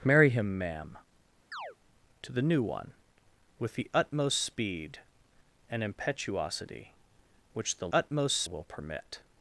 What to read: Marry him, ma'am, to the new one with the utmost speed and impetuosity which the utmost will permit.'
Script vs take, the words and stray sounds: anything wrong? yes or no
yes